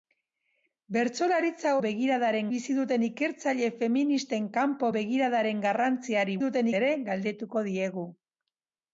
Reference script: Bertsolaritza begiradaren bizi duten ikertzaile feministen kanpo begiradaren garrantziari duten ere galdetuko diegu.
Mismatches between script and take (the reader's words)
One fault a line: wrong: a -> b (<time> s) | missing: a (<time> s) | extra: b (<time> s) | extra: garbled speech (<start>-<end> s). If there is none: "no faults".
no faults